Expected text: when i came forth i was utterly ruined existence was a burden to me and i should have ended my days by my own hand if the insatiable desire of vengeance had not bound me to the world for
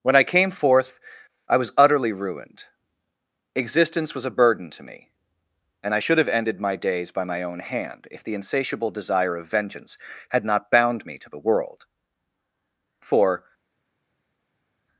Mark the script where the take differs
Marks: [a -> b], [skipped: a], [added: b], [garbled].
when i came forth i was utterly ruined existence was a burden to me and i should have ended my days by my own hand if the insatiable desire of vengeance had not bound me to the world for